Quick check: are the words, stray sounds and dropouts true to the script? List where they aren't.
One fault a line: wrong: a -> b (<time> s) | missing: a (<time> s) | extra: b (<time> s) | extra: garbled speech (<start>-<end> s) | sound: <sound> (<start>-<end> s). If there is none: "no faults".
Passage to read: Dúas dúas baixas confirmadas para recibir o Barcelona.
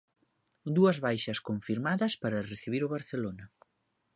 missing: dúas (1.0 s)